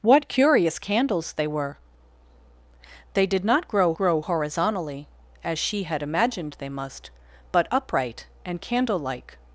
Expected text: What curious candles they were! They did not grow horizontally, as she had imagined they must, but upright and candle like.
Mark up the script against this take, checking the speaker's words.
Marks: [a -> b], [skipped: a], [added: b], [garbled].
What curious candles they were! They did not grow [added: grow] horizontally, as she had imagined they must, but upright and candle like.